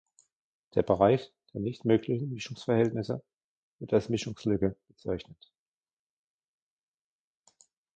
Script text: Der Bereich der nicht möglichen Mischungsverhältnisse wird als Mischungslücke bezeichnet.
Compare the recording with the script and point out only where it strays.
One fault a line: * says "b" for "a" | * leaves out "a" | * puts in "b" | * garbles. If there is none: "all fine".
all fine